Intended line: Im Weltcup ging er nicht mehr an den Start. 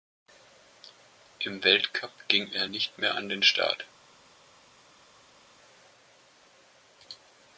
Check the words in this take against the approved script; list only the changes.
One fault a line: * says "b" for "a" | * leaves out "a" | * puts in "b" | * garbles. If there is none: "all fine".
all fine